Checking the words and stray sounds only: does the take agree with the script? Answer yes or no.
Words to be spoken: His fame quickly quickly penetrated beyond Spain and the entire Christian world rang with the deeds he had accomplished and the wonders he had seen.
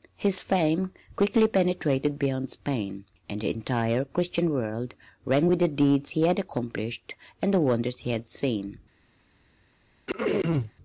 no